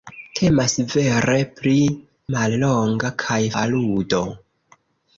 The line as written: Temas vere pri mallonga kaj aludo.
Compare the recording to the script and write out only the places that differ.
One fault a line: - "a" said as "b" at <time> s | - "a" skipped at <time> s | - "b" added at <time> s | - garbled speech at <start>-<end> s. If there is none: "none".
none